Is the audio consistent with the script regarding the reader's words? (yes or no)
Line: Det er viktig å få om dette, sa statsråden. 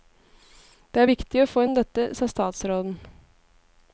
yes